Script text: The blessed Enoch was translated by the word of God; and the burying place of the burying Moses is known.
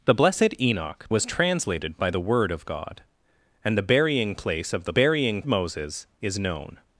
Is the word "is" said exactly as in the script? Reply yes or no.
yes